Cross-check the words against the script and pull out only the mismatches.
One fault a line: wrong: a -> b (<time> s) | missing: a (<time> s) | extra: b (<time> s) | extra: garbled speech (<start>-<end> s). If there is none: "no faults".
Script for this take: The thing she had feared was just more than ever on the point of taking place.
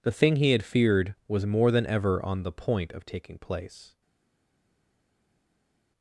wrong: she -> he (0.4 s)
missing: just (1.4 s)